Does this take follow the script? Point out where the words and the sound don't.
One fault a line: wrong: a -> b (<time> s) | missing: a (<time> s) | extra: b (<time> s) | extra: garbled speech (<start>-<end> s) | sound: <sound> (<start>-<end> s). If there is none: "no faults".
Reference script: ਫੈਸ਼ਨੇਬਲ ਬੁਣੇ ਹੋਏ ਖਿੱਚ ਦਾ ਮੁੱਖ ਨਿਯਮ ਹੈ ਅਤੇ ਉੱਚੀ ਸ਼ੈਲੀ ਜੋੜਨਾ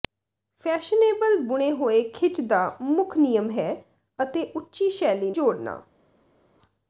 no faults